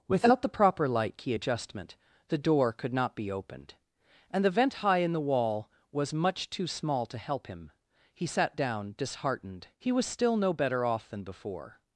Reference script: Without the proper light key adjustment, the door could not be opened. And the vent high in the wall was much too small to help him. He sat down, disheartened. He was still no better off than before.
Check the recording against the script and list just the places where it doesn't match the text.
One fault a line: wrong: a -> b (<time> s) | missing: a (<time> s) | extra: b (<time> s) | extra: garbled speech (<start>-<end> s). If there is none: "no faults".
no faults